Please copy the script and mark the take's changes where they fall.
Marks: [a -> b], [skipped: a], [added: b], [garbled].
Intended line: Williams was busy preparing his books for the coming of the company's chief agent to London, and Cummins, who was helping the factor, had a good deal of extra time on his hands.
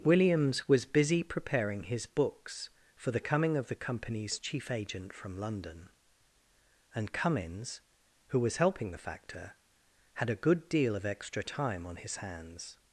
Williams was busy preparing his books for the coming of the company's chief agent [to -> from] London, and Cummins, who was helping the factor, had a good deal of extra time on his hands.